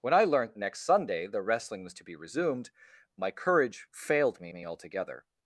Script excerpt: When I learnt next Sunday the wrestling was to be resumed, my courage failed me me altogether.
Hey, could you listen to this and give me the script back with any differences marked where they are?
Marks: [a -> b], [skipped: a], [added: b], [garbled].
When I learnt next Sunday the wrestling was to be resumed, my courage failed me me altogether.